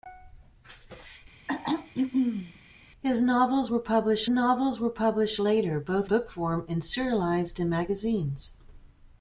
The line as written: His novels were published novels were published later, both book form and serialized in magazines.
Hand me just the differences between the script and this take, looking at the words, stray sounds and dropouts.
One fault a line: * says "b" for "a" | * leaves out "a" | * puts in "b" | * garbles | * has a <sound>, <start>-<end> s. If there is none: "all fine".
* has a throat clearing, 1.5-2.6 s